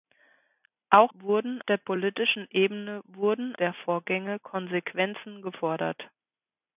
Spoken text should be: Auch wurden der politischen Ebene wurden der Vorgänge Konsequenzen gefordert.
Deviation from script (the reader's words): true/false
false